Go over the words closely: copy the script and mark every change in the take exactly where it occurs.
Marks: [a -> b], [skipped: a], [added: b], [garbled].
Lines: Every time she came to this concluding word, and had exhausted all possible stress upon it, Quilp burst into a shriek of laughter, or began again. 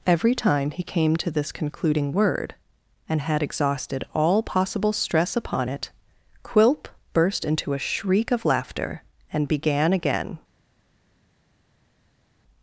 Every time [she -> he] came to this concluding word, and had exhausted all possible stress upon it, Quilp burst into a shriek of laughter, [or -> and] began again.